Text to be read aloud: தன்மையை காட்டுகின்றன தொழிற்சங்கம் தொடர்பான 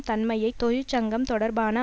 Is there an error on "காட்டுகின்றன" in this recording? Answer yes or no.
yes